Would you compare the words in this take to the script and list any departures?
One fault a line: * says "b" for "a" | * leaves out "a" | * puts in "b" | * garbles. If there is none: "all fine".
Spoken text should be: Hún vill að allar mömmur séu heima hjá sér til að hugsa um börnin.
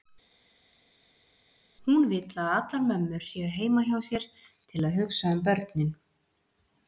all fine